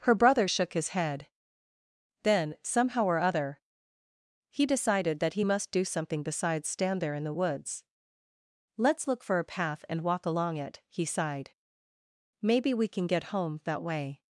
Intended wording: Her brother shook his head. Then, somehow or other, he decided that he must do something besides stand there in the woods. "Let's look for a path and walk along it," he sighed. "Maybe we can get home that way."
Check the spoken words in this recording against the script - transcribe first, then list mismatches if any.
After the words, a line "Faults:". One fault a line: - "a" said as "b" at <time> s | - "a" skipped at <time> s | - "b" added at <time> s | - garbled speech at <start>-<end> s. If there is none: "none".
Her brother shook his head. Then, somehow or other, he decided that he must do something besides stand there in the woods. "Let's look for a path and walk along it," he sighed. "Maybe we can get home that way."
Faults:
none